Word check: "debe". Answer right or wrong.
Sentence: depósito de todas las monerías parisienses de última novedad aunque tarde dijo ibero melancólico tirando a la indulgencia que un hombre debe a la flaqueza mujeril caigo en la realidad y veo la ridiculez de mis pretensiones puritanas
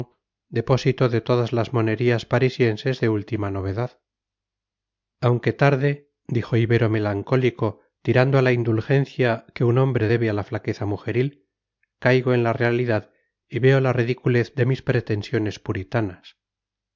right